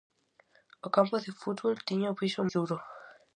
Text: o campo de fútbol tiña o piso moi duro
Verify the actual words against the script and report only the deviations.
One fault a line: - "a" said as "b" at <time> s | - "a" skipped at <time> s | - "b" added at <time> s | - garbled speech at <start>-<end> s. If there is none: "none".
- "moi" skipped at 2.4 s